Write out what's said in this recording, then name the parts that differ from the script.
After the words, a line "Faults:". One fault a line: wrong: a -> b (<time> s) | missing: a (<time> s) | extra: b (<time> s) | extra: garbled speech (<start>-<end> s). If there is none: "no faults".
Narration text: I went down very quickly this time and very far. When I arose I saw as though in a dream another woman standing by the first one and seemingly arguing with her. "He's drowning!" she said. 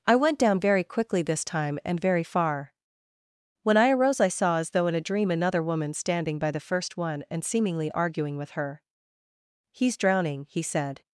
I went down very quickly this time and very far. When I arose I saw as though in a dream another woman standing by the first one and seemingly arguing with her. "He's drowning!" he said.
Faults:
wrong: she -> he (10.5 s)